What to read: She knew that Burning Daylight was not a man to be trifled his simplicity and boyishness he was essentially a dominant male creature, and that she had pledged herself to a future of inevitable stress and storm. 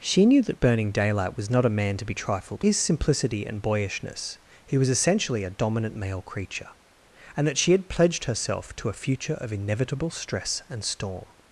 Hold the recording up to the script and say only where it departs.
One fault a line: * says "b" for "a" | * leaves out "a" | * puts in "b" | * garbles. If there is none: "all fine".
all fine